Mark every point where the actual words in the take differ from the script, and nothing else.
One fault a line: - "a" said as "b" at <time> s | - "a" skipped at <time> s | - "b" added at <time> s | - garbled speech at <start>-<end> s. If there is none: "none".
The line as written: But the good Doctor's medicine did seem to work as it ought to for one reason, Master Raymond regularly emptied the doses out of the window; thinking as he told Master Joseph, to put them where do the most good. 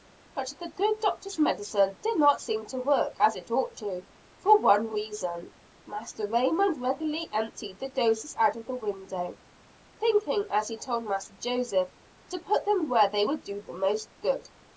- "not" added at 2.2 s
- "they would" added at 13.1 s